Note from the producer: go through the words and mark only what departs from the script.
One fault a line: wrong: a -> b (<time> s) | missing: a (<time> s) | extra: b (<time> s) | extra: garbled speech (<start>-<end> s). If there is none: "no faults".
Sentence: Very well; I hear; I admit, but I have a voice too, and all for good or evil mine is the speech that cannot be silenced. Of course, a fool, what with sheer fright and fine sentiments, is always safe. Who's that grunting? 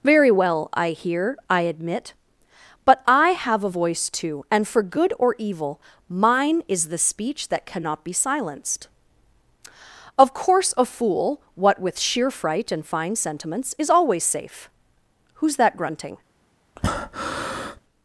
missing: all (4.7 s)